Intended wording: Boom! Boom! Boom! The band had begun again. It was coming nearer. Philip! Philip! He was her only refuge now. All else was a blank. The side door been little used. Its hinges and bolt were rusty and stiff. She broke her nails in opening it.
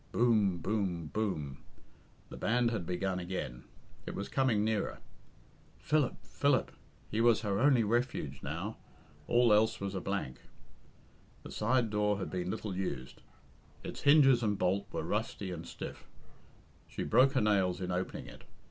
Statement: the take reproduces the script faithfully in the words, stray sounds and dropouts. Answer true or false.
false